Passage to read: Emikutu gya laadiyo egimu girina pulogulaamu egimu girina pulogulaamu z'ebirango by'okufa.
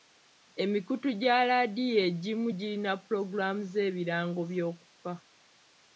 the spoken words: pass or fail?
fail